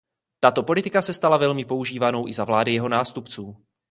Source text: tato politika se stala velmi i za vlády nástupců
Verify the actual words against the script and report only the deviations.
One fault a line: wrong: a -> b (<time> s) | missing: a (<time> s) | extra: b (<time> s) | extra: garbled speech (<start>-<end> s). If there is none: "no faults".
extra: používanou (1.6 s)
extra: jeho (2.7 s)